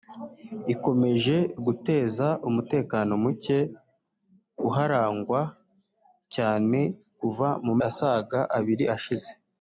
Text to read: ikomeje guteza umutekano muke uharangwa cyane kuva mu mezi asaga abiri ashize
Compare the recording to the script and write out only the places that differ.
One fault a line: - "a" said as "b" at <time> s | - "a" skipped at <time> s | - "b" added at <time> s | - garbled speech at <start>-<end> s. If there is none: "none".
- "mezi" skipped at 7.7 s